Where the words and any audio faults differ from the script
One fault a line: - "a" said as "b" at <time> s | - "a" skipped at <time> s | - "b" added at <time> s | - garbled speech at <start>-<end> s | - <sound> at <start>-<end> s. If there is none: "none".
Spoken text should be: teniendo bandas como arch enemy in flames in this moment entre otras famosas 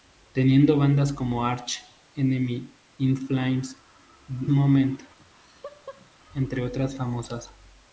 - "in this" skipped at 3.8 s
- laugh at 5.2-6.1 s